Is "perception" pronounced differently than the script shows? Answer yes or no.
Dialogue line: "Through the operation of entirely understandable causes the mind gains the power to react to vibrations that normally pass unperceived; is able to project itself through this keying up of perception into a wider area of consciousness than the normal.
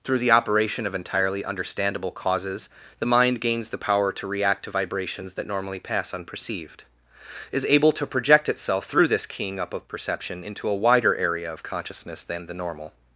no